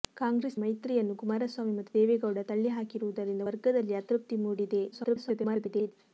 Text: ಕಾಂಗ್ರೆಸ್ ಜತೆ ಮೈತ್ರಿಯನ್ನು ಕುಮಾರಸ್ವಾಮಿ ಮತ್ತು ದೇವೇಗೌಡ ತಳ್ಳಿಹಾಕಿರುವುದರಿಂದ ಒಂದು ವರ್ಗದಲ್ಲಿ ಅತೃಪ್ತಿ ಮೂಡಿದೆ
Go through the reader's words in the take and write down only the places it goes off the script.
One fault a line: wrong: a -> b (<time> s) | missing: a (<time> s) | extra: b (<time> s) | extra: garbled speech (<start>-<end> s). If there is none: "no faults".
missing: ಜತೆ (0.6 s)
missing: ಒಂದು (3.5 s)
extra: garbled speech (4.9-5.9 s)